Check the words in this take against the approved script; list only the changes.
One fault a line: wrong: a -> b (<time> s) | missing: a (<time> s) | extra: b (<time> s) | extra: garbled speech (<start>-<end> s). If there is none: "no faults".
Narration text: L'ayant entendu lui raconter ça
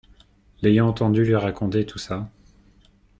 extra: tout (1.9 s)